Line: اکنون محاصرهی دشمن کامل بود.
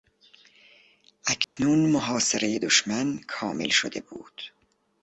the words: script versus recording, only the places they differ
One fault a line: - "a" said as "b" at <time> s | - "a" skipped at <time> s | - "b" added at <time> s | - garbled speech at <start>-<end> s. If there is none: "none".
- "شده" added at 3.7 s